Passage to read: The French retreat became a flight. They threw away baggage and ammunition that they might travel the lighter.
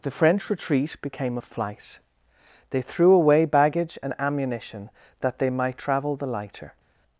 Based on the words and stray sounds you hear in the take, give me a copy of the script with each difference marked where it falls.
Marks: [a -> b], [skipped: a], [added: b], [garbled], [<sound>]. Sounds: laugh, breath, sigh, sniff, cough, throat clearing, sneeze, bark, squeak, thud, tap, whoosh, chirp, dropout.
The French retreat became a flight. They threw away baggage and ammunition that they might travel the lighter.